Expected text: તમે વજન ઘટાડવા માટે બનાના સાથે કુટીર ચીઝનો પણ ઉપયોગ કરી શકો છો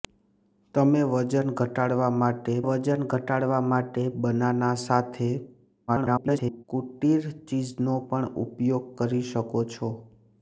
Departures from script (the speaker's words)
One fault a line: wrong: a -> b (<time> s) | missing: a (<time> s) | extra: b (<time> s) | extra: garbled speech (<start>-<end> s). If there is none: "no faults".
extra: વજન ઘટાડવા માટે (2.6 s)
extra: garbled speech (5.9-6.6 s)